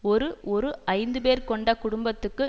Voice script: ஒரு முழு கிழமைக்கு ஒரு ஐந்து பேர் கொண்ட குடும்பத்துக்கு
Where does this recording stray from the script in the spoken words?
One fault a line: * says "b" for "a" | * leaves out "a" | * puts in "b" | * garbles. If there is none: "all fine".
* leaves out "முழு கிழமைக்கு"